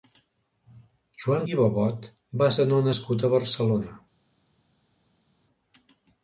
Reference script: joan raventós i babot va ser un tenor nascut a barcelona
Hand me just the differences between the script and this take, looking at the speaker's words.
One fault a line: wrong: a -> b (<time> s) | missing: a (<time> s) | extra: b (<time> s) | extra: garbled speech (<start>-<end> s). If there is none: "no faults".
missing: raventós (1.4 s)
missing: ser un (2.5 s)